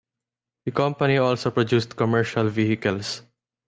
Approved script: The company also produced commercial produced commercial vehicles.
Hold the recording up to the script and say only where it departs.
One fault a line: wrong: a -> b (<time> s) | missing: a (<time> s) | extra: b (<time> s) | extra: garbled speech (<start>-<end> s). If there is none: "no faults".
missing: produced commercial (2.5 s)